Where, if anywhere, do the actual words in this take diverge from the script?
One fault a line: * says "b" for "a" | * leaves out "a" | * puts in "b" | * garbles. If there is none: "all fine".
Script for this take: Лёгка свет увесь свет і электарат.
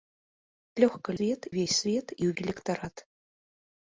all fine